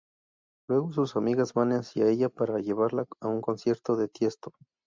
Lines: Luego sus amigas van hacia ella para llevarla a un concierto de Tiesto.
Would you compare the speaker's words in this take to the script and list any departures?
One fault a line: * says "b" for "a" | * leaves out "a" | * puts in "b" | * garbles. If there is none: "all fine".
all fine